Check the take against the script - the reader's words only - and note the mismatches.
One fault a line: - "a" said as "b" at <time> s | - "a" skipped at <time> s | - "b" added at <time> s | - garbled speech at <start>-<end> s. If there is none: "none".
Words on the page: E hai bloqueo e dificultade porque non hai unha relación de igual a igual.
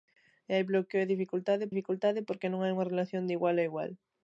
- "dificultade" added at 1.7 s